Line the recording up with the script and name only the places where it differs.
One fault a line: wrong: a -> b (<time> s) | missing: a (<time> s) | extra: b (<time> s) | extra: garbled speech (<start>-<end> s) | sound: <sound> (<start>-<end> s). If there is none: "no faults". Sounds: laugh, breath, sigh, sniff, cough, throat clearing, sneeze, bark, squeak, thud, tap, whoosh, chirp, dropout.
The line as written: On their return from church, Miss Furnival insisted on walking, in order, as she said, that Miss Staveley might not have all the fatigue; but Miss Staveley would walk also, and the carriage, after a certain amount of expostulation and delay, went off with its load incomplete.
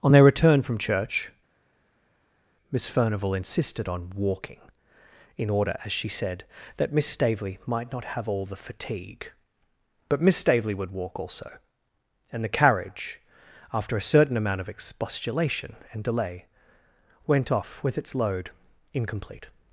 no faults